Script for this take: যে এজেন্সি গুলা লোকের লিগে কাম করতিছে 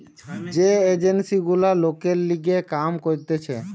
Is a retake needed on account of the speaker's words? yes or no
no